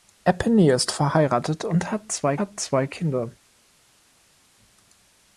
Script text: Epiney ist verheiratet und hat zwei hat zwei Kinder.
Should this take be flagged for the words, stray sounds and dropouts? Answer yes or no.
no